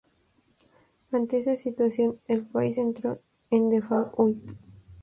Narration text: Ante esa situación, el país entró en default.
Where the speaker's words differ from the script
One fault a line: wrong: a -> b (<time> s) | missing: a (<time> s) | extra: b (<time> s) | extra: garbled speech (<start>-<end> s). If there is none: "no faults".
no faults